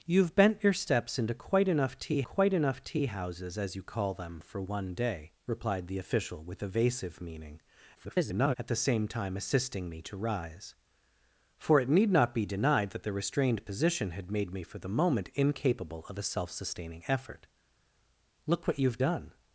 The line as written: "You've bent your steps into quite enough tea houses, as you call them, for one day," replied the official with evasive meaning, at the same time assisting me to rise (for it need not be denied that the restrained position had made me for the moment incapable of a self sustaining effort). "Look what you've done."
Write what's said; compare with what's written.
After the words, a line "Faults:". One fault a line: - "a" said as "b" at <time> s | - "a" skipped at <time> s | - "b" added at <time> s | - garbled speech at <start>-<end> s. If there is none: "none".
"You've bent your steps into quite enough tea quite enough tea houses, as you call them, for one day," replied the official with evasive meaning, [garbled] at the same time assisting me to rise (for it need not be denied that the restrained position had made me for the moment incapable of a self sustaining effort). "Look what you've done."
Faults:
- "quite enough tea" added at 2.2 s
- garbled speech at 7.9-8.5 s